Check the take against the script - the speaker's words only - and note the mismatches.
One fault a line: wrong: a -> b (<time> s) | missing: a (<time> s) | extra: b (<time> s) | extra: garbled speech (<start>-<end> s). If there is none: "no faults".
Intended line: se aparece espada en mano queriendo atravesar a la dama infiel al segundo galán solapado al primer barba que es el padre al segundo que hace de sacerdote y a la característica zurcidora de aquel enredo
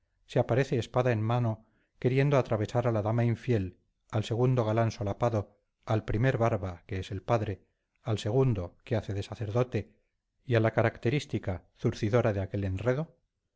no faults